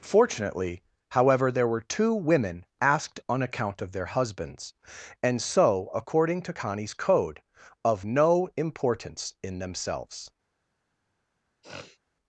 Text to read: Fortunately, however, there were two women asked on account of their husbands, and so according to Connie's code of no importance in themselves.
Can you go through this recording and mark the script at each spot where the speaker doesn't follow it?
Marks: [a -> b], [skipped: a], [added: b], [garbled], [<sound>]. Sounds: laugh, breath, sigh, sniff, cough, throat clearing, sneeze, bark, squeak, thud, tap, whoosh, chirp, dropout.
Fortunately, however, there were two women asked on account of their husbands, and so according to Connie's code of no importance in themselves. [sniff]